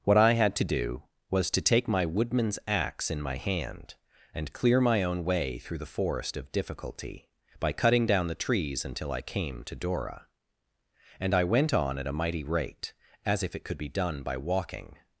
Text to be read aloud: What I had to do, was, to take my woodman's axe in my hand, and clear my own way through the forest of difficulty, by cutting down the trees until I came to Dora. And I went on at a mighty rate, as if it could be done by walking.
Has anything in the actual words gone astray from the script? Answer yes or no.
no